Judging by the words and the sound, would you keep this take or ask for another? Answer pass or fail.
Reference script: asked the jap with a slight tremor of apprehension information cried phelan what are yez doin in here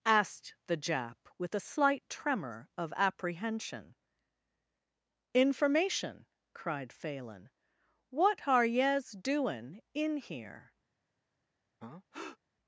fail